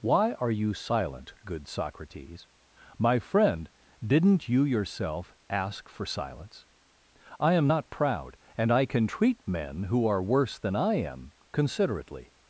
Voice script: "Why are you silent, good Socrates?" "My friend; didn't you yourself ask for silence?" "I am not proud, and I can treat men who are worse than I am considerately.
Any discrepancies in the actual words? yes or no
no